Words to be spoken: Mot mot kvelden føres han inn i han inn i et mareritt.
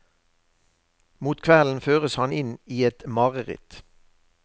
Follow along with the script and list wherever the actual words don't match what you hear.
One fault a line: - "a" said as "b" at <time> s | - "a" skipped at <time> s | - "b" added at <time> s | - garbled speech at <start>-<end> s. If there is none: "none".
- "mot" skipped at 1.4 s
- "han inn i" skipped at 2.8 s